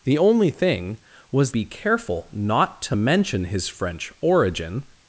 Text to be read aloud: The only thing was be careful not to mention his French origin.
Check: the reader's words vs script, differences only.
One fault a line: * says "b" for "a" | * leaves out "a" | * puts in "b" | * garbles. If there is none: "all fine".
all fine